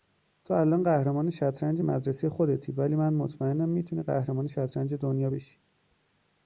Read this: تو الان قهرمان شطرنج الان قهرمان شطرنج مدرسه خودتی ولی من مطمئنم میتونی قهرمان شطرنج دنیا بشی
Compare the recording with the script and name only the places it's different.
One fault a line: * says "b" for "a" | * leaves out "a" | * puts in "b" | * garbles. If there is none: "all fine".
* leaves out "الان قهرمان شطرنج"